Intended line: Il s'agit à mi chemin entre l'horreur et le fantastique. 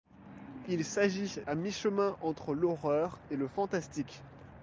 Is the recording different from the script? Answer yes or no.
no